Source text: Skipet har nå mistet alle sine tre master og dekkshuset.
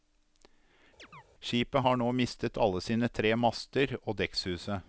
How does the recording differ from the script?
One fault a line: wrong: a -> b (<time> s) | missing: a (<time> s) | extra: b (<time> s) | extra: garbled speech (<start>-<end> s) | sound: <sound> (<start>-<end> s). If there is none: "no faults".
sound: chirp (1.0-1.2 s)